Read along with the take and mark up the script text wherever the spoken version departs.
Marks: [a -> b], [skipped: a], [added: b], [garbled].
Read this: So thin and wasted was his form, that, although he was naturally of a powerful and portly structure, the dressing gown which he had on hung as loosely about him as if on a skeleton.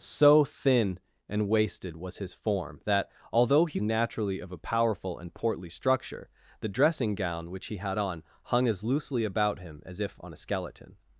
So thin and wasted was his form, that, although he [skipped: was] naturally of a powerful and portly structure, the dressing gown which he had on hung as loosely about him as if on a skeleton.